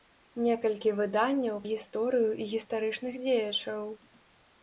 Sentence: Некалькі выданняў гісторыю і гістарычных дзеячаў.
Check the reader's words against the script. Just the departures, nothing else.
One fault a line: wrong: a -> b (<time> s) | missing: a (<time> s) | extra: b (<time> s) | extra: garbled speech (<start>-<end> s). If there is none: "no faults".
no faults